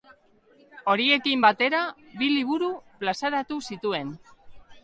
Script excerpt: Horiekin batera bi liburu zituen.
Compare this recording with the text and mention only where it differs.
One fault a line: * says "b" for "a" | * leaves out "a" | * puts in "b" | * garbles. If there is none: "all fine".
* puts in "plazaratu"